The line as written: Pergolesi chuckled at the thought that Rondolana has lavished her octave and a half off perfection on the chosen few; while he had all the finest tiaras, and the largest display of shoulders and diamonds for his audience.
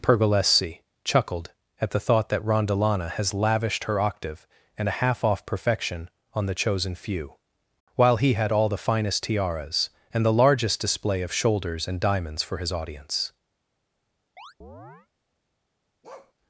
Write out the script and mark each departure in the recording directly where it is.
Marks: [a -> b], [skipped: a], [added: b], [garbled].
Pergolesi chuckled at the thought that Rondolana has lavished her octave and a half off perfection on the chosen few; while he had all the finest tiaras, and the largest display of shoulders and diamonds for his audience.